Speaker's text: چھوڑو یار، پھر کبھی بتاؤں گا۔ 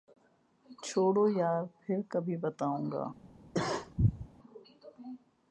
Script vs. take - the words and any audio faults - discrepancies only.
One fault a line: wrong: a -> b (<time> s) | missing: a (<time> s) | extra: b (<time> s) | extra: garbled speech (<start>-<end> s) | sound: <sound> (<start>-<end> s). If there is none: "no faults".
sound: cough (3.5-4.3 s)